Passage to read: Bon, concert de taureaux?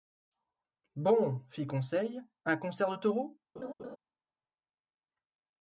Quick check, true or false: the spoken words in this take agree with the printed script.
false